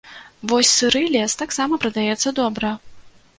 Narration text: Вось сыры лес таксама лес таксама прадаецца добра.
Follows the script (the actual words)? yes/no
no